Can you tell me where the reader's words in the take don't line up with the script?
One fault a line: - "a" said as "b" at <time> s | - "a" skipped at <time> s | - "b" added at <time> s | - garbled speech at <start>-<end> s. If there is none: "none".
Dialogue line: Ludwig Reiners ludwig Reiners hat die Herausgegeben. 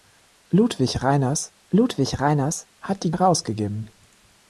none